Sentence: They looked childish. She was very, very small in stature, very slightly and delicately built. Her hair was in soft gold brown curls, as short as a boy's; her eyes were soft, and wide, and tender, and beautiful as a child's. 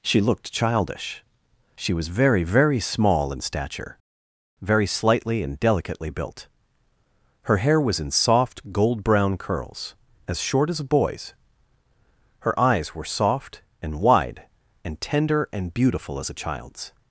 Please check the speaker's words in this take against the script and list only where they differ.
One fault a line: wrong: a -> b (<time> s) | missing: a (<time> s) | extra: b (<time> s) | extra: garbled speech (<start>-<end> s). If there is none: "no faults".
wrong: They -> She (0.0 s)